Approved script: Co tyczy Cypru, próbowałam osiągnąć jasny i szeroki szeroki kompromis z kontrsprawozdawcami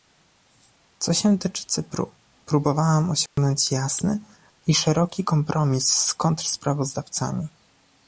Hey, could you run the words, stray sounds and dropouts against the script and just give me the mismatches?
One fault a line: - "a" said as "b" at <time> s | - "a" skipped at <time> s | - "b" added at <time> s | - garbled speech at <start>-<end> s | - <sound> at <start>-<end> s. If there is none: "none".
- "się" added at 1.1 s
- dropout at 3.3-3.4 s
- "szeroki" skipped at 5.2 s